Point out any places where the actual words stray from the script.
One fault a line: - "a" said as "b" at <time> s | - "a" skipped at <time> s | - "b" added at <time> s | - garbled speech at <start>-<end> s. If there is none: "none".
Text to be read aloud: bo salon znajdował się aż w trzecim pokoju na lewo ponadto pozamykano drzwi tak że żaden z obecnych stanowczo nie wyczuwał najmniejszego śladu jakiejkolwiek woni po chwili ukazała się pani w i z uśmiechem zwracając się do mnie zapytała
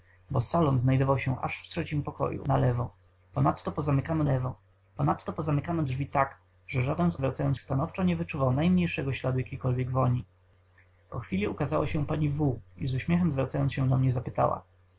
- "lewo ponadto pozamykano" added at 4.2 s
- "obecnych" said as "zwracając" at 7.2 s